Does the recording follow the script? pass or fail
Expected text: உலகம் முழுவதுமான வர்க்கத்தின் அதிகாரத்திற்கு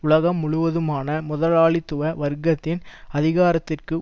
fail